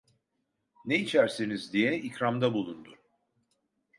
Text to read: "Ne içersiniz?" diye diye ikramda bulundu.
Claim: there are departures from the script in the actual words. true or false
true